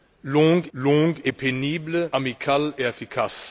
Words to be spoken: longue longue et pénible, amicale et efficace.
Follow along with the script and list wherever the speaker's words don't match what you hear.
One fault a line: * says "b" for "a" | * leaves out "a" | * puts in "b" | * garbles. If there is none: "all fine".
all fine